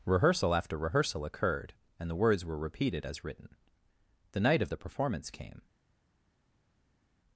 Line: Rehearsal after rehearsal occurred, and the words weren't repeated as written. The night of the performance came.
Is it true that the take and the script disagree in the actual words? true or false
true